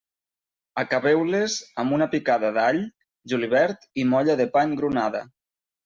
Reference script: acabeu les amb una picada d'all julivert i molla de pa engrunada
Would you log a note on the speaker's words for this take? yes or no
no